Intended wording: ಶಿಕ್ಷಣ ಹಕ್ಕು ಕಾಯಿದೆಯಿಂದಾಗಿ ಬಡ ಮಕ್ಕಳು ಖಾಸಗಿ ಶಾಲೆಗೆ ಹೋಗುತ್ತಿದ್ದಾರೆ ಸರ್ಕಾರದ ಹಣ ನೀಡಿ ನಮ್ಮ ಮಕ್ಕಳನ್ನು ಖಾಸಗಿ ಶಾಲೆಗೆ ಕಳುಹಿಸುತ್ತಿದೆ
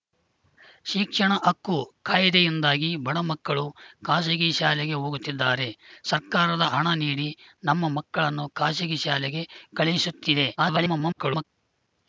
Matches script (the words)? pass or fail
fail